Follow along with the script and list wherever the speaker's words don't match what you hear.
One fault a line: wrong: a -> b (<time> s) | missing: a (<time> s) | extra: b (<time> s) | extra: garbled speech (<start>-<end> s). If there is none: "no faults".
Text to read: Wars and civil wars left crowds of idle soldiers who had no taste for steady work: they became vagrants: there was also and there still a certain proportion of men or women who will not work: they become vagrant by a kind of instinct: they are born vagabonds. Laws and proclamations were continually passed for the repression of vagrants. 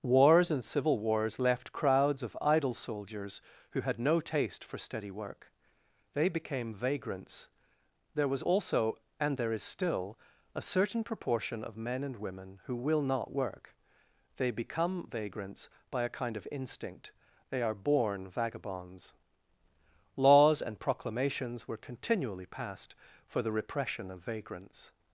extra: is (9.5 s)
wrong: or -> and (12.0 s)
wrong: vagrant -> vagrants (15.1 s)